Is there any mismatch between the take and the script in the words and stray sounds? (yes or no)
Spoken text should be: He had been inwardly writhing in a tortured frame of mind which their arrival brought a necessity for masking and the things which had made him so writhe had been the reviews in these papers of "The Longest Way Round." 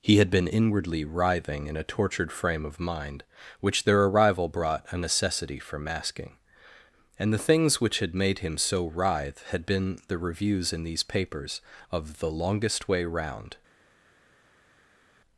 no